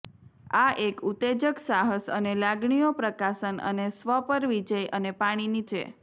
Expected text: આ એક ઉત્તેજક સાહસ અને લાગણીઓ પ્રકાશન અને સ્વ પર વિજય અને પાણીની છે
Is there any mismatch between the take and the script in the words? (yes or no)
no